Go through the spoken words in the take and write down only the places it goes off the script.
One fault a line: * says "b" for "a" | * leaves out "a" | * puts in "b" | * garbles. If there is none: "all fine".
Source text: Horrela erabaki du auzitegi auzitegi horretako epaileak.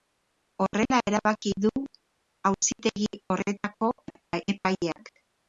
* leaves out "auzitegi"